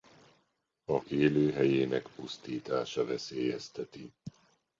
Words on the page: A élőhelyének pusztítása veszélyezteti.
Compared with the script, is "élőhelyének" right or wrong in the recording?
right